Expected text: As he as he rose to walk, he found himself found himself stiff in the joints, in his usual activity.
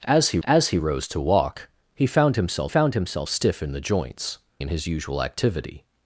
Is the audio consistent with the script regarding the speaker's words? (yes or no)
yes